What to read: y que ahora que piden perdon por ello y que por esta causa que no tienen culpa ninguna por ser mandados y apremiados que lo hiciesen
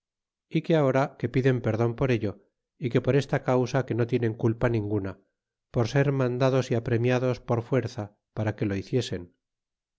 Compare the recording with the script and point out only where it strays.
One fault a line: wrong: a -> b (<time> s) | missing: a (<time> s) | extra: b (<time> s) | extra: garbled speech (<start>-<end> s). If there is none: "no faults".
extra: por fuerza para (7.4 s)